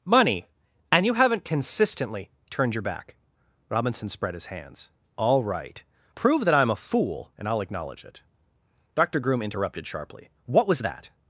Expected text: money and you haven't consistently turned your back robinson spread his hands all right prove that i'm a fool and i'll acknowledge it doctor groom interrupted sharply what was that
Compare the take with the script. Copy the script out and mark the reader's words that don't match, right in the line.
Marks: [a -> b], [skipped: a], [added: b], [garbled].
money and you haven't consistently turned your back robinson spread his hands all right prove that i'm a fool and i'll acknowledge it doctor groom interrupted sharply what was that